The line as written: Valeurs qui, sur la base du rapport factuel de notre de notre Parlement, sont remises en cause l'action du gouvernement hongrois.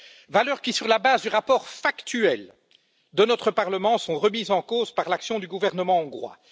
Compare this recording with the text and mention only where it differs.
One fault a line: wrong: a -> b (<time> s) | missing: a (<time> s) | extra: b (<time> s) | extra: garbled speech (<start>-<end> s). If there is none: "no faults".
missing: de notre (3.5 s)
extra: par (4.9 s)